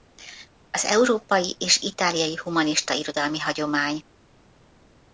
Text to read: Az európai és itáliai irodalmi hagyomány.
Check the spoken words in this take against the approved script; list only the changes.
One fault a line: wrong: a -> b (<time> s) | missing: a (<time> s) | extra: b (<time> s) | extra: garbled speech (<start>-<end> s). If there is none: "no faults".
extra: humanista (2.4 s)